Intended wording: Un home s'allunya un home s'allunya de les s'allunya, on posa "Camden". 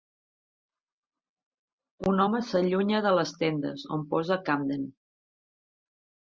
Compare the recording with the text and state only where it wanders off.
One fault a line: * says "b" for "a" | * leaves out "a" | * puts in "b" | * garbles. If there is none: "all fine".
* leaves out "un home s'allunya"
* says "tendes" for "s'allunya"